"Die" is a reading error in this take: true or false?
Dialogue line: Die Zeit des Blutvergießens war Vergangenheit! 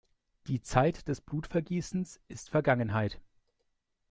false